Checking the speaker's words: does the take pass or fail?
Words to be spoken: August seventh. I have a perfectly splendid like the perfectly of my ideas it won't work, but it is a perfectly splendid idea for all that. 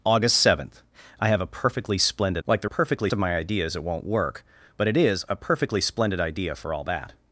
pass